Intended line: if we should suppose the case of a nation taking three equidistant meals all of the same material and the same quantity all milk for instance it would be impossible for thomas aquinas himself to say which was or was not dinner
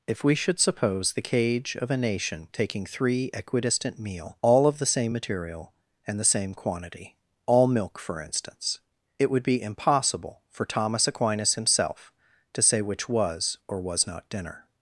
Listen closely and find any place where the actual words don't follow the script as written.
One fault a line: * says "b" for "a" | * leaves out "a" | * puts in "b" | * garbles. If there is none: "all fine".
* says "cage" for "case"
* says "meal" for "meals"